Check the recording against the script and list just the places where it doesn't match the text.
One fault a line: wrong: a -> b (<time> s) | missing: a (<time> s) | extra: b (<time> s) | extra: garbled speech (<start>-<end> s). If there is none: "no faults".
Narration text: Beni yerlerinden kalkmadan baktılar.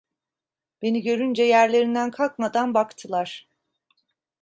extra: görünce (1.0 s)